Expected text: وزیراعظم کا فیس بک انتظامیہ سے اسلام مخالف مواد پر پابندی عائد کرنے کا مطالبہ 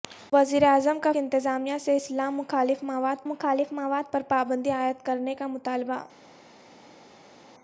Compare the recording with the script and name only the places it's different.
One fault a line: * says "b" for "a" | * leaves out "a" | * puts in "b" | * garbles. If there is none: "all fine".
* leaves out "فیس بک"
* puts in "مخالف مواد"